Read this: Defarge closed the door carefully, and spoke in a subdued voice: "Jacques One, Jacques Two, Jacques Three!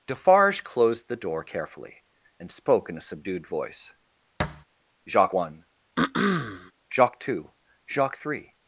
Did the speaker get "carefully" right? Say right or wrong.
right